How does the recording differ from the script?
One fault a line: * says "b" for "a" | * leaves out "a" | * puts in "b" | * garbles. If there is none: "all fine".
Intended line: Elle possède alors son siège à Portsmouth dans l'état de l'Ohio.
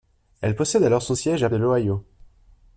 * leaves out "Portsmouth dans l'état"